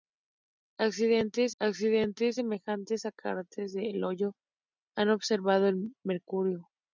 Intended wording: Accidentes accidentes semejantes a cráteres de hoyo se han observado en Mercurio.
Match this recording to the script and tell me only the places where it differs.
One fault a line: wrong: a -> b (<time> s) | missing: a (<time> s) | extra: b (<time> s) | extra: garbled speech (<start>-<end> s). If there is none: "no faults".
no faults